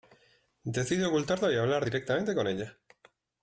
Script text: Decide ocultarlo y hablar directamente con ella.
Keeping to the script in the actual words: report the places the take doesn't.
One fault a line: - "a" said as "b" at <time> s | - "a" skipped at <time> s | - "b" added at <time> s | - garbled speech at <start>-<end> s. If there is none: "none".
none